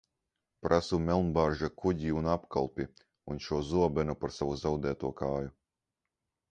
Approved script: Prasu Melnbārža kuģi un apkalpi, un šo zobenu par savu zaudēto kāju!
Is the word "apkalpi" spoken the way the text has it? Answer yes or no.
yes